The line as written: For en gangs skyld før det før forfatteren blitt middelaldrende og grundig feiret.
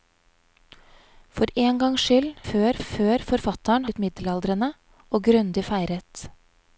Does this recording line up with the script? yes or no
yes